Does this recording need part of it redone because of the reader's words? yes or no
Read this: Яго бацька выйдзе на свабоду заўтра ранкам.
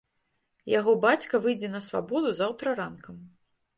no